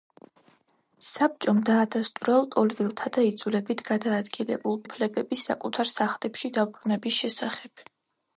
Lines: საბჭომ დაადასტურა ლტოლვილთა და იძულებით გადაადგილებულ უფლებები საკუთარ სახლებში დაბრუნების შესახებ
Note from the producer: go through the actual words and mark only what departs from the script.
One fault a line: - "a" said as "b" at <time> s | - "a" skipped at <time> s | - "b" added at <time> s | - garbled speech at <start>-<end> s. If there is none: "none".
none